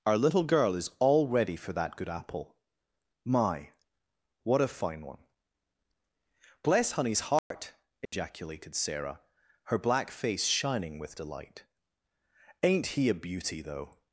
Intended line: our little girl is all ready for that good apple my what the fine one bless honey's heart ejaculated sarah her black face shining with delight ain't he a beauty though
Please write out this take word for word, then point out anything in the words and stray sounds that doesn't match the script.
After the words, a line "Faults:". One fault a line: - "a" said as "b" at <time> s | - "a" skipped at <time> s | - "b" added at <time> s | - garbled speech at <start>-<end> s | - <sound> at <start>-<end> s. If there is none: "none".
our little girl is all ready for that good apple my what a fine one bless honey's heart ejaculated sarah her black face shining with delight ain't he a beauty though
Faults:
- "the" said as "a" at 4.6 s
- dropout at 7.4-7.5 s
- dropout at 8.1-8.1 s